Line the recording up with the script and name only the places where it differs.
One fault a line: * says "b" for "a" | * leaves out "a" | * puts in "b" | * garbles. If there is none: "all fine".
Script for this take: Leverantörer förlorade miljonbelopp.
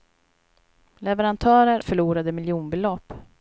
all fine